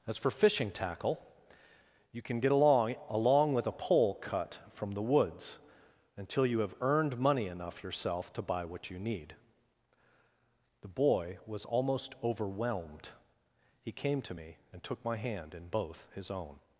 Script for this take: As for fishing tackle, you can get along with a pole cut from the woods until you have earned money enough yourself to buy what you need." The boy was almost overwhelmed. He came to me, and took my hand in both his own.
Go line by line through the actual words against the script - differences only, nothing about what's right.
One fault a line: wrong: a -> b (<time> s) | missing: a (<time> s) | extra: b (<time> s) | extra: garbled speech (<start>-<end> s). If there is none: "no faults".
extra: along (3.1 s)